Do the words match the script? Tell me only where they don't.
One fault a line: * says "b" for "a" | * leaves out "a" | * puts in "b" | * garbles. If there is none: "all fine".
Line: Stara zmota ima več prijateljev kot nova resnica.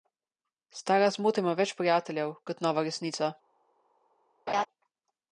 all fine